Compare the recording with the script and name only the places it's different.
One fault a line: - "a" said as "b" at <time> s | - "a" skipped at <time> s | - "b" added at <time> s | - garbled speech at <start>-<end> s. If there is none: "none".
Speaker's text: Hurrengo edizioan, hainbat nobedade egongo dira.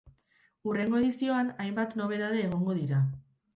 none